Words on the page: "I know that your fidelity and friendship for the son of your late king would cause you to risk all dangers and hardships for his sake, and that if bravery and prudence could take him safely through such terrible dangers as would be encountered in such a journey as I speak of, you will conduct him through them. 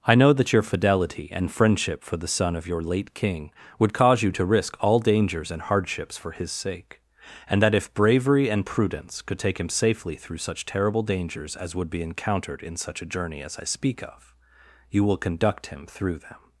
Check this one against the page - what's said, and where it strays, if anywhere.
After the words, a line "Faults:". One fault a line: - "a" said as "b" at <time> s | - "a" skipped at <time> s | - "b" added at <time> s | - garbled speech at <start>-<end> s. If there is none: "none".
"I know that your fidelity and friendship for the son of your late king would cause you to risk all dangers and hardships for his sake, and that if bravery and prudence could take him safely through such terrible dangers as would be encountered in such a journey as I speak of, you will conduct him through them.
Faults:
none